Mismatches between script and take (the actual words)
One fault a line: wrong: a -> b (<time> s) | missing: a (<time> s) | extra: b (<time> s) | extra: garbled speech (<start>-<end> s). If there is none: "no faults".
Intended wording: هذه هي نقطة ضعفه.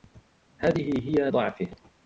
missing: نقطة (1.3 s)